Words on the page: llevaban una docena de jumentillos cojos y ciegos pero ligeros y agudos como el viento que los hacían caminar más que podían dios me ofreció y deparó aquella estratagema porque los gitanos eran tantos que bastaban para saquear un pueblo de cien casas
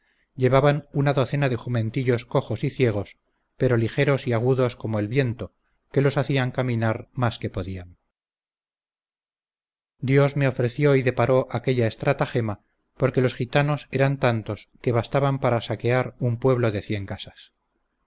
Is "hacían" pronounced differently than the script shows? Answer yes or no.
no